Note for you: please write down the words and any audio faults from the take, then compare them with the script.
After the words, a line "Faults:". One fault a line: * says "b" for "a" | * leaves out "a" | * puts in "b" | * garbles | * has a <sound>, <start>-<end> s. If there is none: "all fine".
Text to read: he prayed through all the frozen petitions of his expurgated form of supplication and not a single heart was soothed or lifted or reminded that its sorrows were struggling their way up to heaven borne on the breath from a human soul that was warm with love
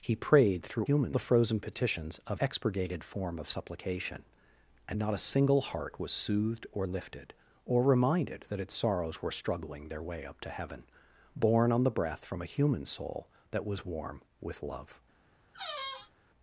he prayed through human the frozen petitions of expurgated form of supplication and not a single heart was soothed or lifted or reminded that its sorrows were struggling their way up to heaven borne on the breath from a human soul that was warm with love
Faults:
* says "human" for "all"
* leaves out "his"
* has a squeak, 15.5-16.1 s